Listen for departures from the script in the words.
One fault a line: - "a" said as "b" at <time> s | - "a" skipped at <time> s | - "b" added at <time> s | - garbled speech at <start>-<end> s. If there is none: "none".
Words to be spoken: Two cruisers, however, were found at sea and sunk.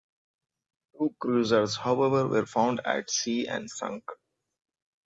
none